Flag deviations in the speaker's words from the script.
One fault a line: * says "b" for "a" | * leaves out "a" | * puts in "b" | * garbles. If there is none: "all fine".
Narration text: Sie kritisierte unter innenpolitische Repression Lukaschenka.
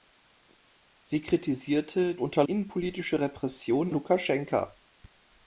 all fine